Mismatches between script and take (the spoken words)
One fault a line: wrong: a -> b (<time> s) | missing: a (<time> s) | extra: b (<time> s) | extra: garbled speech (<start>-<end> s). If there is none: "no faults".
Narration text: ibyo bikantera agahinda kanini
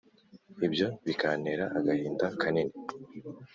no faults